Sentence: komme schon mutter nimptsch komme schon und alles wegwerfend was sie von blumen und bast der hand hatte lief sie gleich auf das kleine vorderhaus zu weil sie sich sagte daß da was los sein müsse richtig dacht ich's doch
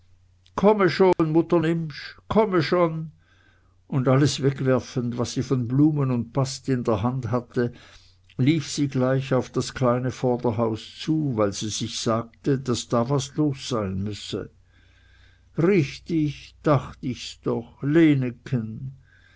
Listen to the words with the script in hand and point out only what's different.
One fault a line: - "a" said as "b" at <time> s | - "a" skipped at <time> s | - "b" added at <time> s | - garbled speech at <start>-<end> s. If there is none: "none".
- "in" added at 6.7 s